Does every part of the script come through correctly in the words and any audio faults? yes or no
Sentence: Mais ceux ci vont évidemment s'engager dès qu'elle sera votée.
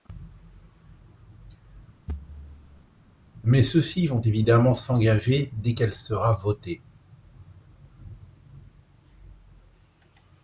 no